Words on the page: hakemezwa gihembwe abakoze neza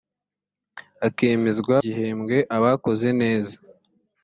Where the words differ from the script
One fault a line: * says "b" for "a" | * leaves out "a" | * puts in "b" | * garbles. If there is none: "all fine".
all fine